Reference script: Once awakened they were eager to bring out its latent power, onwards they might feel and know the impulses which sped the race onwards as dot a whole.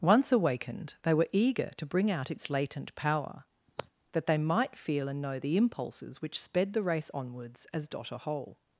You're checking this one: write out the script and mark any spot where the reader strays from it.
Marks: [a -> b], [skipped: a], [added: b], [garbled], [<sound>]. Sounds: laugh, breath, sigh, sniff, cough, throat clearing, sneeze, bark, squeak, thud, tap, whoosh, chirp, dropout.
Once awakened they were eager to bring out its latent power, [sigh] [onwards -> that] they might feel and know the impulses which sped the race onwards as dot a whole.